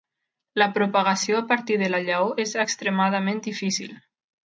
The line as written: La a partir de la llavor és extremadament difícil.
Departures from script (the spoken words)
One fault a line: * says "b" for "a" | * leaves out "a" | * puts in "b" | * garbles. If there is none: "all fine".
* puts in "propagació"